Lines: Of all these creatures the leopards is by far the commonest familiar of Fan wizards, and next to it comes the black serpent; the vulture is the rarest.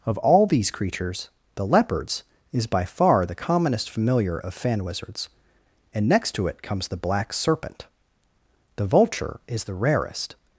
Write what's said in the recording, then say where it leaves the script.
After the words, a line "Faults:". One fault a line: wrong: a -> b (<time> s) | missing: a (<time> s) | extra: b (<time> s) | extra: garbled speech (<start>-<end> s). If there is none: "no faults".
Of all these creatures the leopards is by far the commonest familiar of Fan wizards, and next to it comes the black serpent; the vulture is the rarest.
Faults:
no faults